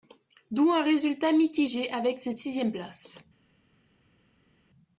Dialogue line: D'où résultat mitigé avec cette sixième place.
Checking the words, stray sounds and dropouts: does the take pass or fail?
fail